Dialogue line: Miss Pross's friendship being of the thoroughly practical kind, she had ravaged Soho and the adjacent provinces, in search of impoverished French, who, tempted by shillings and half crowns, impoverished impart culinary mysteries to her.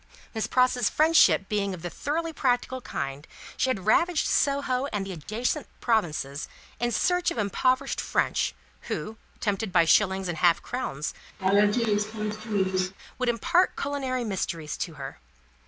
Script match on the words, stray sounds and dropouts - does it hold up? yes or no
no